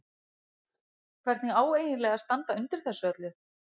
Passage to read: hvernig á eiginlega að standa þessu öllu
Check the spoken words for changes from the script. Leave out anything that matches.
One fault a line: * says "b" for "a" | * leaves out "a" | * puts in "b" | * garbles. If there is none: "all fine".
* puts in "undir"